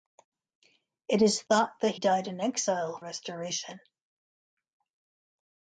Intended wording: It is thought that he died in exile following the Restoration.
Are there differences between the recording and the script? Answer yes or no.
yes